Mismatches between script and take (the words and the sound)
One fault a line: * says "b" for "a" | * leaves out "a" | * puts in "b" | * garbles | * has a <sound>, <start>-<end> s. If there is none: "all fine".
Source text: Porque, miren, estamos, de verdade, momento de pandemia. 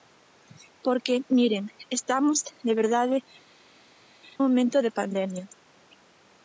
all fine